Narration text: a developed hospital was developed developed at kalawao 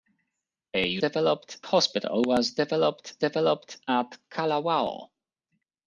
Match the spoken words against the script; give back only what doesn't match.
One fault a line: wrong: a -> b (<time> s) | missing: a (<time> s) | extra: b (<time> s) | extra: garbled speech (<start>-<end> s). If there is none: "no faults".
no faults